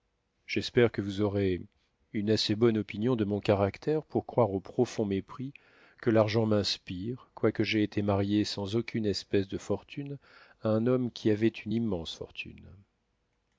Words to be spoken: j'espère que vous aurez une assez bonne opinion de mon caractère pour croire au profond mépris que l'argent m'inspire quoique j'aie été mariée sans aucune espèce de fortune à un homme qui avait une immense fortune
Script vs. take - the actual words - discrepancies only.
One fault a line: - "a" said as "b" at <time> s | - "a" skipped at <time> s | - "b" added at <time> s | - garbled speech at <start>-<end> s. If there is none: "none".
none